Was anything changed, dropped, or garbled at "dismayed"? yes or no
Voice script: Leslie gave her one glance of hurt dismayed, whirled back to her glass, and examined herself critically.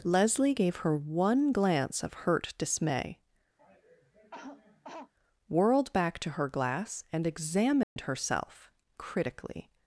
yes